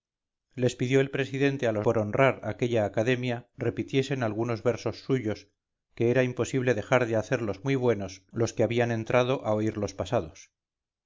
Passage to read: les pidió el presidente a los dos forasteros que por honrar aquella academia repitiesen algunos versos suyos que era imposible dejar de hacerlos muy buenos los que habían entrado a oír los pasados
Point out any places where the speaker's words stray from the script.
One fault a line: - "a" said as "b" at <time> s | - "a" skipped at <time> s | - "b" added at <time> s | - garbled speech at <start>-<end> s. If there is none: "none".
- "dos forasteros que" skipped at 1.9 s